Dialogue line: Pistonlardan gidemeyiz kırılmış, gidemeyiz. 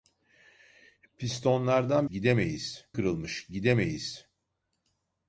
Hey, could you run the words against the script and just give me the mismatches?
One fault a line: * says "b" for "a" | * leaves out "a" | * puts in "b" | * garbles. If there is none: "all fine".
all fine